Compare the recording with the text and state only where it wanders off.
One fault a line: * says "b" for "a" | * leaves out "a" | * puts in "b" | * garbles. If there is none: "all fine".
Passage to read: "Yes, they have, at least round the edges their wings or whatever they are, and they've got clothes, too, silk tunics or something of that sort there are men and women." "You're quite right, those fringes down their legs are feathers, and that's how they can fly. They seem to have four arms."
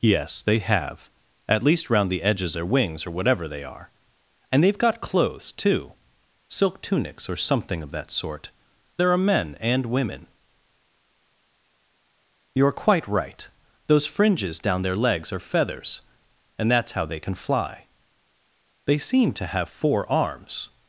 all fine